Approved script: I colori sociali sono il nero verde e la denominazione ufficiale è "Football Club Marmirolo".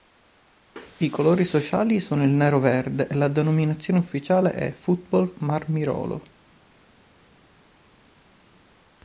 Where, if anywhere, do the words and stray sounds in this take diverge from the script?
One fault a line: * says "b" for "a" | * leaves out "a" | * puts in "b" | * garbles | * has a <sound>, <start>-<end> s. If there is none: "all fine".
* leaves out "Club"